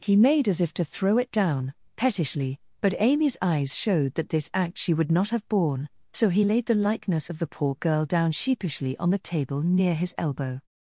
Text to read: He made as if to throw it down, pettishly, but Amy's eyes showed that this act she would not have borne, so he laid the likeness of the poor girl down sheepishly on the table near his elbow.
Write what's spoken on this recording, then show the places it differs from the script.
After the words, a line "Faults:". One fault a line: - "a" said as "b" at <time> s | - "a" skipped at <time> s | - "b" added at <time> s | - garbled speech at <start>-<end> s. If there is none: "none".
He made as if to throw it down, pettishly, but Amy's eyes showed that this act she would not have borne, so he laid the likeness of the poor girl down sheepishly on the table near his elbow.
Faults:
none